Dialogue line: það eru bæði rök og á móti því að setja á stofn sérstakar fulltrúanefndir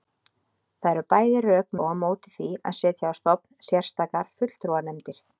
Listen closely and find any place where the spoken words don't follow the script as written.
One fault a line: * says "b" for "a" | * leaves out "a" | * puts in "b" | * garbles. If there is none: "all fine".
all fine